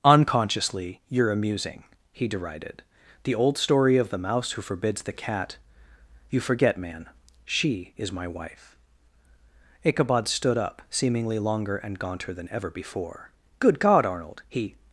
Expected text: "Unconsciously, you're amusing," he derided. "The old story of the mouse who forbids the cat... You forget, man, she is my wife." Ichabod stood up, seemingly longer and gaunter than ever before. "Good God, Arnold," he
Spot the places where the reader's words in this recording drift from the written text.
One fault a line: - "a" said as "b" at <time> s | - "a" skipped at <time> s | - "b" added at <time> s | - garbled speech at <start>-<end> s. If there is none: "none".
none